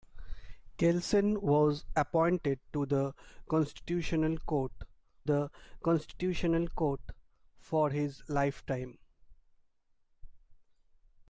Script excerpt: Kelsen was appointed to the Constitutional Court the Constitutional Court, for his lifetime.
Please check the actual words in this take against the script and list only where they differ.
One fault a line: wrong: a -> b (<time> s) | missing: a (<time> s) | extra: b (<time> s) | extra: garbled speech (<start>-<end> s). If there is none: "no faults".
no faults